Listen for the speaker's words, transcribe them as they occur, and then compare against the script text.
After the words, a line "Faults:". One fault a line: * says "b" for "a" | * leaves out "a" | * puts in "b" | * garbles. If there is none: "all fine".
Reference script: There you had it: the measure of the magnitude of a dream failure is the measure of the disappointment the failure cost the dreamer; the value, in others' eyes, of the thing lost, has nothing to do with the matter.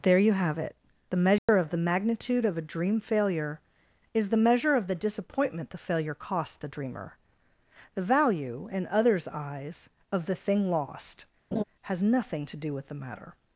There you have it: the measure of the magnitude of a dream failure is the measure of the disappointment the failure cost the dreamer; the value, in others' eyes, of the thing lost, has nothing to do with the matter.
Faults:
* says "have" for "had"